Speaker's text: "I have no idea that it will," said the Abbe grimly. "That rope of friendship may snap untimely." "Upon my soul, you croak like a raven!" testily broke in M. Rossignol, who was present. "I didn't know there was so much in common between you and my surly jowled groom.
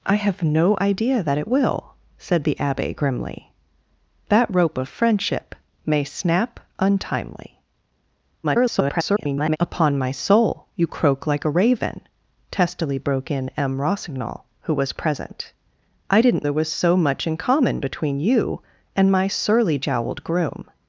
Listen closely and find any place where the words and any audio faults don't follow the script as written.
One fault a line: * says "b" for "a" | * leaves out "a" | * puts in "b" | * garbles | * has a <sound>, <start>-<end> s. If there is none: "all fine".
* garbles
* leaves out "know"